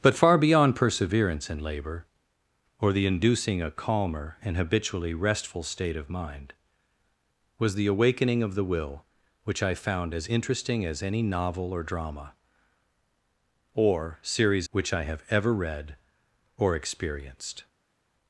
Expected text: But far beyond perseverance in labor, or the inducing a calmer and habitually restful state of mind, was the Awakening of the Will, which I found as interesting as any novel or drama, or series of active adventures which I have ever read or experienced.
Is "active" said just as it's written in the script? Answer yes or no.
no